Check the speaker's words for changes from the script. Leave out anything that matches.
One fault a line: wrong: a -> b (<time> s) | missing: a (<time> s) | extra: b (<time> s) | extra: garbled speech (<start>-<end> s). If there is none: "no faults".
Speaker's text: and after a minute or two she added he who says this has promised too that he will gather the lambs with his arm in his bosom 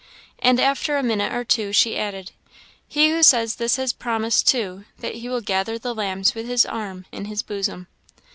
no faults